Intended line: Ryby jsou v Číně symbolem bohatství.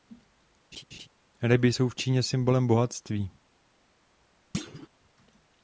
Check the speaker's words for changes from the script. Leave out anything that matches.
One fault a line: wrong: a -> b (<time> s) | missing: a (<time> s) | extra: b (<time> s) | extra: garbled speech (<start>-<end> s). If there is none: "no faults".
no faults